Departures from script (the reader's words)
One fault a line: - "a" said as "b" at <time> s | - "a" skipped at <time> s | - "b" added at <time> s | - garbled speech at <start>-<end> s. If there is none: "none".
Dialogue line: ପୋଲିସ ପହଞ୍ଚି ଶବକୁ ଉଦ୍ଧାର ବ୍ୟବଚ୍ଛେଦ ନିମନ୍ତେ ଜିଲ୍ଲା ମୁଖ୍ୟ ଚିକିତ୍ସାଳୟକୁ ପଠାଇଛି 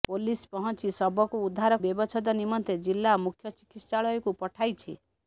none